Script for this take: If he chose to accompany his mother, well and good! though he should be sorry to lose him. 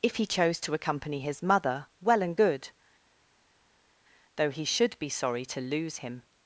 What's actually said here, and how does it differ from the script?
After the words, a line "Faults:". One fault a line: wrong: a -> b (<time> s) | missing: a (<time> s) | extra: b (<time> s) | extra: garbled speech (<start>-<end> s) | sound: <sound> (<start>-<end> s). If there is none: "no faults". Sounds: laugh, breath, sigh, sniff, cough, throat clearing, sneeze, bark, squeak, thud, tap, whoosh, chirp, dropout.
If he chose to accompany his mother, well and good! though he should be sorry to lose him.
Faults:
no faults